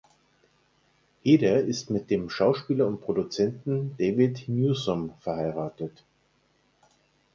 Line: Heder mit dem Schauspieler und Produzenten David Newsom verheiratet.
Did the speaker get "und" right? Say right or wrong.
right